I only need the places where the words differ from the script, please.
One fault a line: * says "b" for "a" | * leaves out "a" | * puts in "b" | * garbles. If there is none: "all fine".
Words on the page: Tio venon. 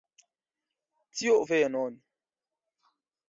all fine